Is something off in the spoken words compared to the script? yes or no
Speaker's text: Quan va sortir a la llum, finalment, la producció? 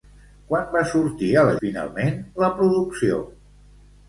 yes